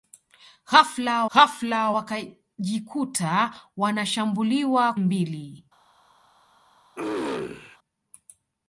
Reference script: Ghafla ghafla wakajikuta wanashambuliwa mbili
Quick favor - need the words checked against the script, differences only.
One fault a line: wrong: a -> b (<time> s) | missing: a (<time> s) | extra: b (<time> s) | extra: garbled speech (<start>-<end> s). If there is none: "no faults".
no faults